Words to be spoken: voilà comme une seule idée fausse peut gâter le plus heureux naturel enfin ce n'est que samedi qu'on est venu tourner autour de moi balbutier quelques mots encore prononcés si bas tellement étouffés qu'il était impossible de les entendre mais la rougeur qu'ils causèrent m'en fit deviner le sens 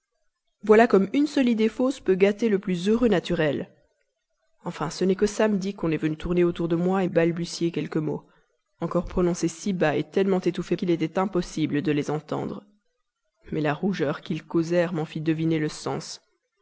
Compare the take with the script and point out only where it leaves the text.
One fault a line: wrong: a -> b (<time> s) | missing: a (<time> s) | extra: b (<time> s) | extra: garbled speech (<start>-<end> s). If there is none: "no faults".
no faults